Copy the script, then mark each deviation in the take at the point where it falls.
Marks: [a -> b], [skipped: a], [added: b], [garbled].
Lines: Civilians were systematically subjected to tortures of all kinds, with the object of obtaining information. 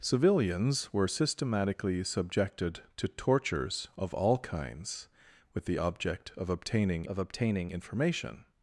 Civilians were systematically subjected to tortures of all kinds, with the object of obtaining [added: of obtaining] information.